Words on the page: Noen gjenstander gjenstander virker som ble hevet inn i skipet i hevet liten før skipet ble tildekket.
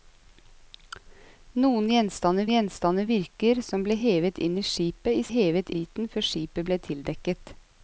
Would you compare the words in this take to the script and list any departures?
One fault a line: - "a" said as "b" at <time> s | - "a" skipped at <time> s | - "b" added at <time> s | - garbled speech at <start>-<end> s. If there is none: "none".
none